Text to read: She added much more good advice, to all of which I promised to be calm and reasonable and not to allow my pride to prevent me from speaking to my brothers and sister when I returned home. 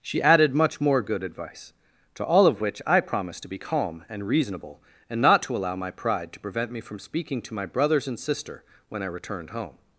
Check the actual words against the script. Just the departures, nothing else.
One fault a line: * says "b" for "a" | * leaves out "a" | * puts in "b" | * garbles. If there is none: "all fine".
all fine